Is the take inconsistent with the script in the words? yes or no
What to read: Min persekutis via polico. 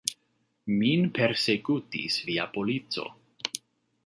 no